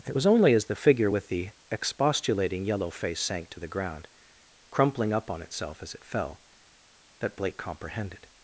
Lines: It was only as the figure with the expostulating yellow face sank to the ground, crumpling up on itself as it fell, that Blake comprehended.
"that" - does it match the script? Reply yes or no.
yes